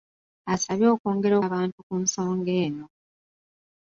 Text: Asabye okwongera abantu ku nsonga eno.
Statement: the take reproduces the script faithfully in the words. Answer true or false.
true